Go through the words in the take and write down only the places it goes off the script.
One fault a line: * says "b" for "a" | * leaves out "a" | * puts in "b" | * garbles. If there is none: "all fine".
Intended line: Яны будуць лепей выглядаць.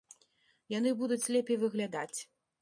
all fine